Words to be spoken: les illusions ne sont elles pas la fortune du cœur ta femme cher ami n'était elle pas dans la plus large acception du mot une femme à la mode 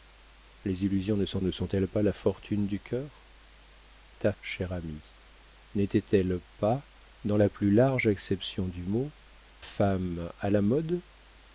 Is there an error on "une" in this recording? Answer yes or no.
yes